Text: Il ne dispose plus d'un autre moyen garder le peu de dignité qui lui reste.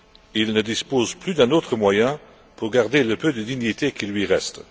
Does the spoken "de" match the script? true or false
true